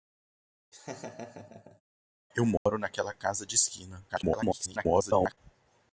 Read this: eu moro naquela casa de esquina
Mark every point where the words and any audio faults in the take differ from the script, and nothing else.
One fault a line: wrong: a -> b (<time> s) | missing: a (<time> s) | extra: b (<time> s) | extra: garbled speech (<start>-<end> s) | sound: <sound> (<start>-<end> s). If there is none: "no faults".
sound: laugh (0.7-1.8 s)
sound: dropout (2.6-2.7 s)
extra: garbled speech (4.1-5.4 s)